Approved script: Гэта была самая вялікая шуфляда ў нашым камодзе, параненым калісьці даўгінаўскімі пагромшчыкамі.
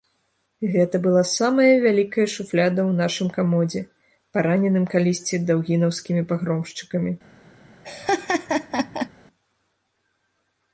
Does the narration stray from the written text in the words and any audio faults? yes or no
yes